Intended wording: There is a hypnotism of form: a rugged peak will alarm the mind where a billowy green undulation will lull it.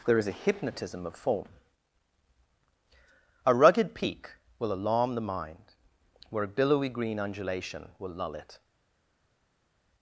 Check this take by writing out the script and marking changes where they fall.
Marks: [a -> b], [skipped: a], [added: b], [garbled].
There is a hypnotism of form: a rugged peak will alarm the mind where a billowy green undulation will lull it.